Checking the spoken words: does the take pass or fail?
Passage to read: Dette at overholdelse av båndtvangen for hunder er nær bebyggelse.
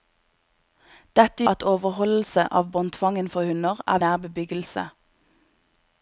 pass